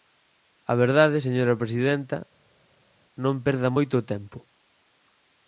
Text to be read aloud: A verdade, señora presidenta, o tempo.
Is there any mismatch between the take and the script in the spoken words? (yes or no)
yes